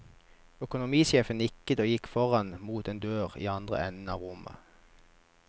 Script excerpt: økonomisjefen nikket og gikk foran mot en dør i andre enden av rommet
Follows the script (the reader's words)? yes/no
yes